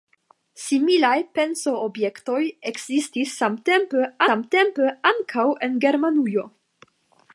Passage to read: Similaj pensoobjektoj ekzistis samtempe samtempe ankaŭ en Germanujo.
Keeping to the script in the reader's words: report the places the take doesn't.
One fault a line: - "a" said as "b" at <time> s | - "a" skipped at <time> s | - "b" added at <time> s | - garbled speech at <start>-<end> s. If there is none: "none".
none